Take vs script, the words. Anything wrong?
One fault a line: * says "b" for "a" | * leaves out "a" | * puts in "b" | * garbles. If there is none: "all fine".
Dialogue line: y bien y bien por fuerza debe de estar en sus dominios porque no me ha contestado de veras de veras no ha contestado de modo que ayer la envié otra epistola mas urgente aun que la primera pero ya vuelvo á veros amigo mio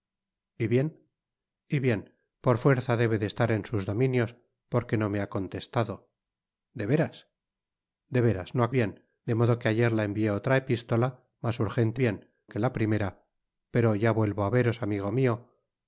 * says "bien" for "contestado"
* says "bien" for "aun"